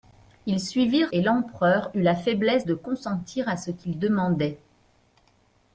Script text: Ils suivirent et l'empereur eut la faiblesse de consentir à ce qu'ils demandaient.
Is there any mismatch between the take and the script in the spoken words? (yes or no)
no